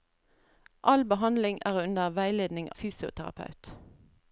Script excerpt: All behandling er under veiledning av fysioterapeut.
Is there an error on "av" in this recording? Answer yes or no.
yes